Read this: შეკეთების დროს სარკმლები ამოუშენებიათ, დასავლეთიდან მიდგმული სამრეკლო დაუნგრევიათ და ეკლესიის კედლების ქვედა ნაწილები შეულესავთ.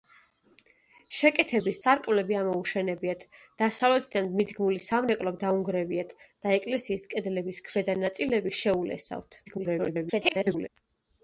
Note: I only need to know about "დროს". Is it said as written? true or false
false